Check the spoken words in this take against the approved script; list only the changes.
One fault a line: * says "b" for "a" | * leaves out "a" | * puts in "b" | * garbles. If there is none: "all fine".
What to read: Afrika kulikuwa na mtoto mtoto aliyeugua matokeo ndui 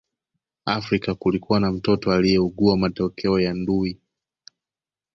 * leaves out "mtoto"
* puts in "ya"